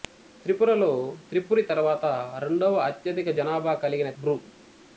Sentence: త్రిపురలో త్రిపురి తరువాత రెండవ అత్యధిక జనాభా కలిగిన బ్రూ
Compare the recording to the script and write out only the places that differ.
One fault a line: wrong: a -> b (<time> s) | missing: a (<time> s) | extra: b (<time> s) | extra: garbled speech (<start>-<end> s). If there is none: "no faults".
no faults